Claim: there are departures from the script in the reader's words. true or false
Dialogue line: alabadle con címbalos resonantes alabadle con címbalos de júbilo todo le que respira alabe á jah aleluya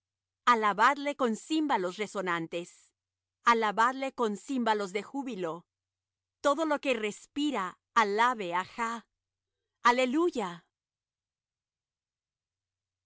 true